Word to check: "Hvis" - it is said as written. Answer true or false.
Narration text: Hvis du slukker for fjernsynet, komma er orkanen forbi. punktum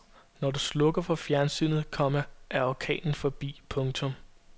false